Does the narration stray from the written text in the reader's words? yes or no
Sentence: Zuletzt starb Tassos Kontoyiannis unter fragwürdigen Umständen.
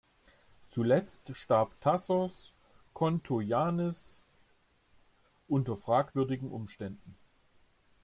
no